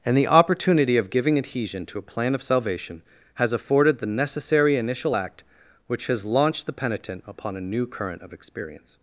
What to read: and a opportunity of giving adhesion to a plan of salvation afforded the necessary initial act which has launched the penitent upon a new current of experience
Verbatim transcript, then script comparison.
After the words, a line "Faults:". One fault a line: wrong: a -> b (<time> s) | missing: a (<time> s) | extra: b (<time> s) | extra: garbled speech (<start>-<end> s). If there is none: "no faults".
and the opportunity of giving adhesion to a plan of salvation has afforded the necessary initial act which has launched the penitent upon a new current of experience
Faults:
wrong: a -> the (0.2 s)
extra: has (3.4 s)